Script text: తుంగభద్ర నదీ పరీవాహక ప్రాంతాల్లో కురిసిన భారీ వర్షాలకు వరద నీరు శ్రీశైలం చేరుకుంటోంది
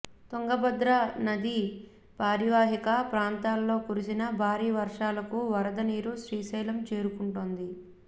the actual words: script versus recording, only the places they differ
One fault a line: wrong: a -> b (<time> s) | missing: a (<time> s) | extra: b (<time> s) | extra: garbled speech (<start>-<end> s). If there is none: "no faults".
no faults